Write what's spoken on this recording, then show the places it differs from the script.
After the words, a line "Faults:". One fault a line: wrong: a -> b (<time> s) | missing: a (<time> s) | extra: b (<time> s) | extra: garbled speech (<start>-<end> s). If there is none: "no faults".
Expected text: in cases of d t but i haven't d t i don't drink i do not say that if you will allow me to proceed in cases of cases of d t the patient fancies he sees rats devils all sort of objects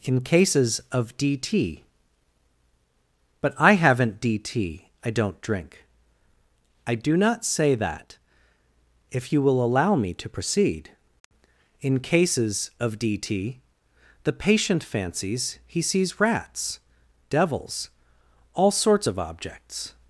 in cases of d t but i haven't d t i don't drink i do not say that if you will allow me to proceed in cases of d t the patient fancies he sees rats devils all sorts of objects
Faults:
missing: cases of (13.0 s)
wrong: sort -> sorts (18.7 s)